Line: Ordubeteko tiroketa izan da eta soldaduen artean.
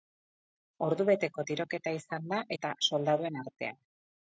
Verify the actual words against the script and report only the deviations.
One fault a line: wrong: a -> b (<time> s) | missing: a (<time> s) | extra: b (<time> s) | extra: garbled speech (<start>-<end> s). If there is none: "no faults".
no faults